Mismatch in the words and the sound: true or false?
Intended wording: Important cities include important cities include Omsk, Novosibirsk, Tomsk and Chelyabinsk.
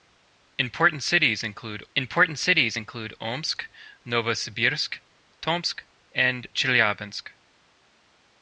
false